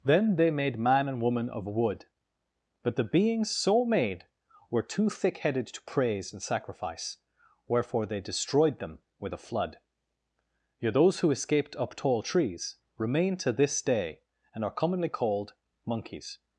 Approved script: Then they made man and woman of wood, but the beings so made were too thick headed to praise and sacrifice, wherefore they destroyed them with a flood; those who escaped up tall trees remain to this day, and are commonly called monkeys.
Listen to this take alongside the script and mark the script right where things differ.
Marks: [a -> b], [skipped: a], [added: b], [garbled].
Then they made man and woman of wood, but the beings so made were too thick headed to praise and sacrifice, wherefore they destroyed them with a flood; [added: yet] those who escaped up tall trees remain to this day, and are commonly called monkeys.